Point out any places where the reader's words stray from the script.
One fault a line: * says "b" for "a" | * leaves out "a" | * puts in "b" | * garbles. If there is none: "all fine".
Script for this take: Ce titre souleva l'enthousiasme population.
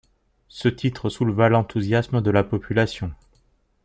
* puts in "de la"